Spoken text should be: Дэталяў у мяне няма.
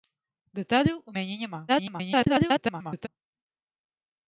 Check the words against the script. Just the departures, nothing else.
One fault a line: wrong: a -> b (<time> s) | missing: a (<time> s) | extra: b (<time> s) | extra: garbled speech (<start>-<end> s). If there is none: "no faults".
extra: garbled speech (1.7-3.1 s)